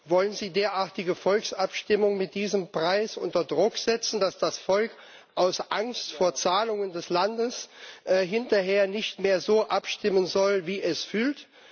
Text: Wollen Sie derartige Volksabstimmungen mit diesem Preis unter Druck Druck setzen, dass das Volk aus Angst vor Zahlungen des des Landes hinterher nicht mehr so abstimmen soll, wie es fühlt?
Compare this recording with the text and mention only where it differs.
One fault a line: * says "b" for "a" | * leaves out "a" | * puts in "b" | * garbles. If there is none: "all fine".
* leaves out "Druck"
* leaves out "des"